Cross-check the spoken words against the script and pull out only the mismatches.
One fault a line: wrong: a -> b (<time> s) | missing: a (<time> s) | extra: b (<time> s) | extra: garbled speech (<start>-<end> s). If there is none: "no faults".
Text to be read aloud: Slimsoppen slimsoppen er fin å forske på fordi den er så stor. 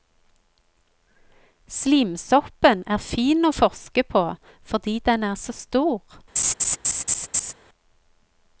missing: slimsoppen (2.8 s)